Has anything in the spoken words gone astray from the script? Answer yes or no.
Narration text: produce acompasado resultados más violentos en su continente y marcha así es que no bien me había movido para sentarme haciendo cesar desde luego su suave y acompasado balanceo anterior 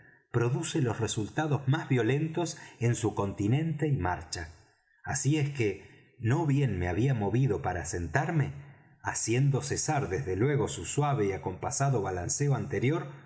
yes